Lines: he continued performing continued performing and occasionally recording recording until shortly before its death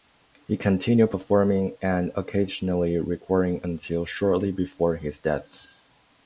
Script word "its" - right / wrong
wrong